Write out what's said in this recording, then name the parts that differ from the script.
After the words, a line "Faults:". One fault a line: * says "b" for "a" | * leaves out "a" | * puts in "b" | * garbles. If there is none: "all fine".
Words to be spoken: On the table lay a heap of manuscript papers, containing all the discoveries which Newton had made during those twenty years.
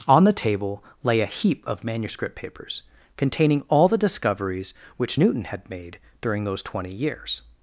On the table lay a heap of manuscript papers, containing all the discoveries which Newton had made during those twenty years.
Faults:
all fine